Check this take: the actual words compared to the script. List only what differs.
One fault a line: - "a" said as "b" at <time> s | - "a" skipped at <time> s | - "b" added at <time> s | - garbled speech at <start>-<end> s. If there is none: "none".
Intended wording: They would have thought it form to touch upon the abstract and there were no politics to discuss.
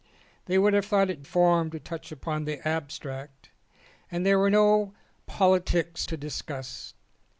none